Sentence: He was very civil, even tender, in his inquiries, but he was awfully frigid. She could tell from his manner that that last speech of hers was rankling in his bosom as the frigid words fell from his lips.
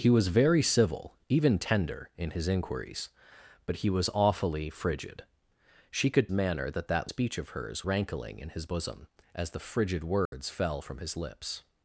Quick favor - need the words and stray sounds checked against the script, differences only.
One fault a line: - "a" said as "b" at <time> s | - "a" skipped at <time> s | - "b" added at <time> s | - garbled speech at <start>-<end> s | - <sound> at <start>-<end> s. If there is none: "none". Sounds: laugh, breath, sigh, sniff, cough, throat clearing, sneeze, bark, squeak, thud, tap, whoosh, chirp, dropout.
- "tell from his" skipped at 6.3 s
- "last" skipped at 7.1 s
- "was" skipped at 7.9 s
- dropout at 10.3-10.3 s